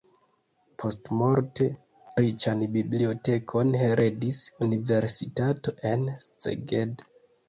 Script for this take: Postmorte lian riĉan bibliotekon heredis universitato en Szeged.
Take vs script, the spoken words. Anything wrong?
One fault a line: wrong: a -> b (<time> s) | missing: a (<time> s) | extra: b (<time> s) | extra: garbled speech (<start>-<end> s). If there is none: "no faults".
missing: lian (1.6 s)